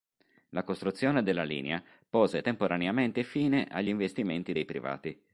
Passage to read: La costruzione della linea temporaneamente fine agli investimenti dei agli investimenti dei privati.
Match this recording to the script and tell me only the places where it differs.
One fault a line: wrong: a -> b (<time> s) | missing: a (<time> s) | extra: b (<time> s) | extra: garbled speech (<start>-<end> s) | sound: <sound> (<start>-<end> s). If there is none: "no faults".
extra: pose (2.1 s)
missing: agli investimenti dei (4.6 s)